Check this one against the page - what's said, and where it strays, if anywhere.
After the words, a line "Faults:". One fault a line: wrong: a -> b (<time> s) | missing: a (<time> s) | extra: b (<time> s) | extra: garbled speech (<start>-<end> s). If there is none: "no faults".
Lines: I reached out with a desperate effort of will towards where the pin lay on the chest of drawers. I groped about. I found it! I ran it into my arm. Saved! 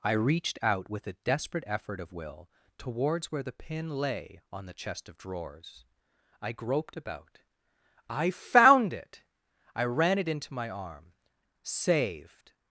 I reached out with a desperate effort of will towards where the pin lay on the chest of drawers. I groped about. I found it! I ran it into my arm. Saved!
Faults:
no faults